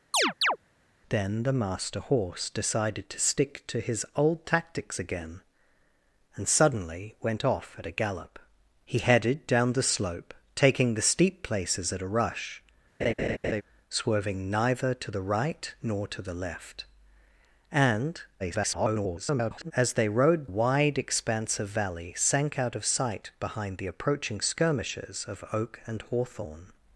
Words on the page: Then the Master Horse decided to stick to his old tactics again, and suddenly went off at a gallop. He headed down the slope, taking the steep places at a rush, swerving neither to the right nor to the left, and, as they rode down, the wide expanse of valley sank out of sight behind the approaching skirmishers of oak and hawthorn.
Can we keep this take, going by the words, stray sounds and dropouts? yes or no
no